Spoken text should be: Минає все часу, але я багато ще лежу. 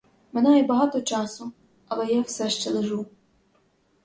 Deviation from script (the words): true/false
true